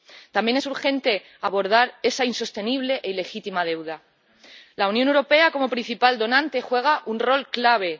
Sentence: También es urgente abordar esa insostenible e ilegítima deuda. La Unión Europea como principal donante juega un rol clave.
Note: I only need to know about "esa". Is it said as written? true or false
true